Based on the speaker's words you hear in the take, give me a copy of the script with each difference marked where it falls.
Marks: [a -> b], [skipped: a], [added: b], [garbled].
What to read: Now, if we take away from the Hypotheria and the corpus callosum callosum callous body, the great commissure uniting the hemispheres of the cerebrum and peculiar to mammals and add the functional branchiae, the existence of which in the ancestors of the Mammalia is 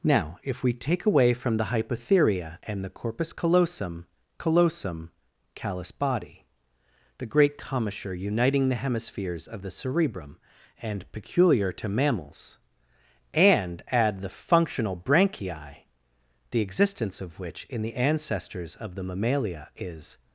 Now, if we take away from the Hypotheria and the corpus callosum callosum callous body, the great commissure uniting the hemispheres of the cerebrum and peculiar to mammals and add the functional branchiae, the existence of which in the ancestors of the Mammalia is